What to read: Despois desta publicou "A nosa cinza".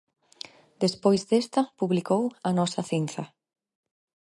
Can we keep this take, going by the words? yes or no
yes